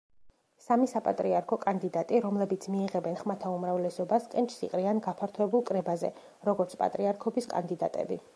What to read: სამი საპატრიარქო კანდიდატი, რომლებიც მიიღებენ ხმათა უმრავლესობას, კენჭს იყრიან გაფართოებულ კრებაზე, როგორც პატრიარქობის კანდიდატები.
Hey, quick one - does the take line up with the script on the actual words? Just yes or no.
yes